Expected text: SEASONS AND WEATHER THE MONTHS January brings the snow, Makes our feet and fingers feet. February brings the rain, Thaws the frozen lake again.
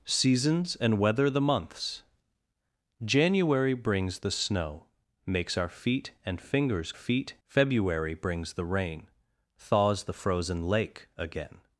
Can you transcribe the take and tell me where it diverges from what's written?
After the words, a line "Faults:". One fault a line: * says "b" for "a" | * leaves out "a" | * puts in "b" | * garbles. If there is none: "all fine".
SEASONS AND WEATHER THE MONTHS January brings the snow, Makes our feet and fingers feet. February brings the rain, Thaws the frozen lake again.
Faults:
all fine